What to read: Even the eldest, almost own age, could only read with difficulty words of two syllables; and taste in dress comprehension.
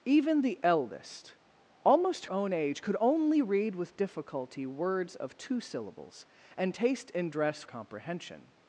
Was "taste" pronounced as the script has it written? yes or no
yes